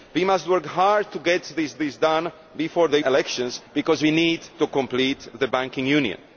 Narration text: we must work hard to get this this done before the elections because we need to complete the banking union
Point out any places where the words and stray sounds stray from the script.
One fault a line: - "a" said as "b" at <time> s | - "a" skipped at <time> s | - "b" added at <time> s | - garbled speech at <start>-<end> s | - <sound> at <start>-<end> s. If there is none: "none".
none